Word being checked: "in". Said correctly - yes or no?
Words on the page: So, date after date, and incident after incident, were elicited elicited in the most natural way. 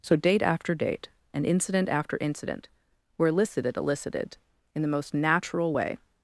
yes